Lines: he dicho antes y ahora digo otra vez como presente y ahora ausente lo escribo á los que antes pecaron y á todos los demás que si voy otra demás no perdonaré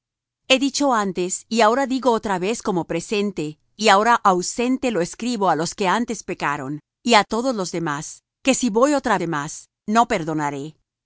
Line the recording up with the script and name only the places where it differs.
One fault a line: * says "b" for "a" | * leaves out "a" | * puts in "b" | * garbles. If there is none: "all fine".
all fine